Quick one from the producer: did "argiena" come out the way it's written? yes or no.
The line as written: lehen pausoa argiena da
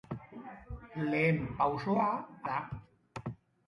no